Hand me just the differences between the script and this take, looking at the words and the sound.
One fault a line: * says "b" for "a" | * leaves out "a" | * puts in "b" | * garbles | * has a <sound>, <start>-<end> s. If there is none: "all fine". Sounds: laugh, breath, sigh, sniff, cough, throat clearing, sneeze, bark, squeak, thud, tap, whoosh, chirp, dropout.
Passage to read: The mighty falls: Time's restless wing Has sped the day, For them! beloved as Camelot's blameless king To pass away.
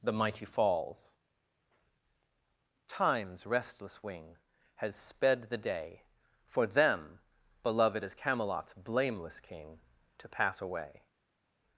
all fine